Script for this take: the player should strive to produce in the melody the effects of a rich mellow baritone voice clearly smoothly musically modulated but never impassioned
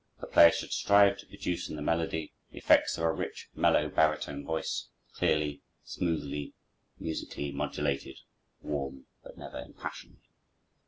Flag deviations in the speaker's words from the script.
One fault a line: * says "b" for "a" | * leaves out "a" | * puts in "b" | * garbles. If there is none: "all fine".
* puts in "warm"